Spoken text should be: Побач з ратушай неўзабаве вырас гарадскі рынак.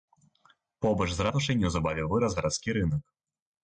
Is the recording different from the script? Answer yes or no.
no